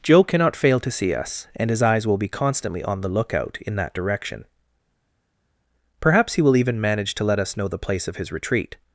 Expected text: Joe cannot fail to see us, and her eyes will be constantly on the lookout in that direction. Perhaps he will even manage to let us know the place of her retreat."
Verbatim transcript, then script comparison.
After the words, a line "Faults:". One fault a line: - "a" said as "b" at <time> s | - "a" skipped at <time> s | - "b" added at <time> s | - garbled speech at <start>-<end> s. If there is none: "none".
Joe cannot fail to see us, and his eyes will be constantly on the lookout in that direction. Perhaps he will even manage to let us know the place of his retreat."
Faults:
- "her" said as "his" at 1.7 s
- "her" said as "his" at 8.2 s